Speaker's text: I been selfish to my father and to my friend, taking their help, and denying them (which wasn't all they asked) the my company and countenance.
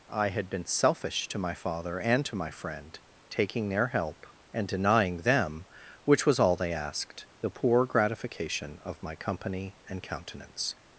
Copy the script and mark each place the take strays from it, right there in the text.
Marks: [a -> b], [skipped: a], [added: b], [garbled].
I [added: had] been selfish to my father and to my friend, taking their help, and denying them (which [wasn't -> was] all they asked) the [added: poor gratification of] my company and countenance.